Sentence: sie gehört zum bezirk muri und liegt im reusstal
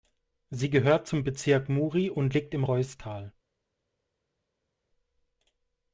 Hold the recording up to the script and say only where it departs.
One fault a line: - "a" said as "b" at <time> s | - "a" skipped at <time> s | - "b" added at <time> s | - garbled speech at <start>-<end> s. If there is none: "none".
none